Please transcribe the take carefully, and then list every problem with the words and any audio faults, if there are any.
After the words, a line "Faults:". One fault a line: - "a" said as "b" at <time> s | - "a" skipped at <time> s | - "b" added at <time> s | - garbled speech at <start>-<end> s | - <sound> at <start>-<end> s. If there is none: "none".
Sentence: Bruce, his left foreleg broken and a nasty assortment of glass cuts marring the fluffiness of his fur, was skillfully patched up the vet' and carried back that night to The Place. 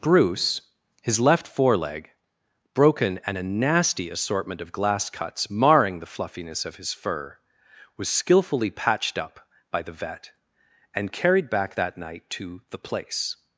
Bruce, his left foreleg broken and a nasty assortment of glass cuts marring the fluffiness of his fur, was skillfully patched up by the vet' and carried back that night to The Place.
Faults:
- "by" added at 9.7 s